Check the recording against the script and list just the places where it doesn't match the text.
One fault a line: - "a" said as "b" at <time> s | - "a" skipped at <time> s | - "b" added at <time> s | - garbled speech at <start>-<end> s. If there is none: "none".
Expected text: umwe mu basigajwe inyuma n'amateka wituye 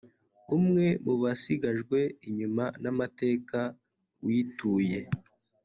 none